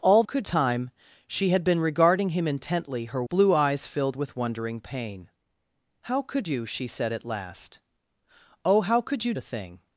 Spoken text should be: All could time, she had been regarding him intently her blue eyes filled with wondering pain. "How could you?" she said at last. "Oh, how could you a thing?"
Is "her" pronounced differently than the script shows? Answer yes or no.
no